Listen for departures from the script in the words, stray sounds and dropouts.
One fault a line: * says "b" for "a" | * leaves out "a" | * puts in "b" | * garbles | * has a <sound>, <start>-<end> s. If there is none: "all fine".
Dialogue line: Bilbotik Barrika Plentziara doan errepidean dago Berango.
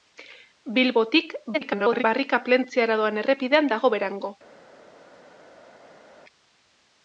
* garbles